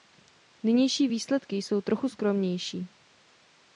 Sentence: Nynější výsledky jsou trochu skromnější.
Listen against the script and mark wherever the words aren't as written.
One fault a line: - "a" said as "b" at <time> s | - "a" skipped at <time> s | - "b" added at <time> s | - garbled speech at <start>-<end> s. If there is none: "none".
none